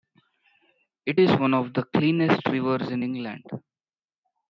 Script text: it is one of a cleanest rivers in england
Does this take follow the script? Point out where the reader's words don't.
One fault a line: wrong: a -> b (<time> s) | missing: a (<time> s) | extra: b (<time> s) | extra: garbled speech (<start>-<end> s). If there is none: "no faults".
wrong: a -> the (1.7 s)